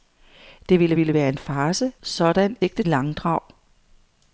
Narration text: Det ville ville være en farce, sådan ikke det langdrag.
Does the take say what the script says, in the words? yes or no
yes